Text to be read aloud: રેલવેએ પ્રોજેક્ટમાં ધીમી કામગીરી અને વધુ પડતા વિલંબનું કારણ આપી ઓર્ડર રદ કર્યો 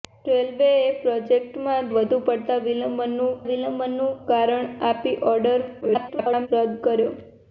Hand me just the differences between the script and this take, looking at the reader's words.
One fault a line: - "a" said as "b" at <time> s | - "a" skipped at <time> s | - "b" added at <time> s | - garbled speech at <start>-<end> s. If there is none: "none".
- "ધીમી કામગીરી અને" skipped at 1.9 s
- "વિલંબનું" added at 3.5 s
- garbled speech at 5.8-6.5 s